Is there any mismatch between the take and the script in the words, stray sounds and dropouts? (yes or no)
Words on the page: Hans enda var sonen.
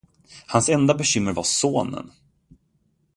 yes